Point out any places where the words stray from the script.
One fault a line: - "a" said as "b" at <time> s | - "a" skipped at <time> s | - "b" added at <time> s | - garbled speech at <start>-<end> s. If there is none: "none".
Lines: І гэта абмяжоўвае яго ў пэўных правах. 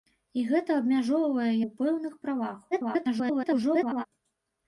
- "яго" skipped at 1.5 s
- garbled speech at 2.7-4.1 s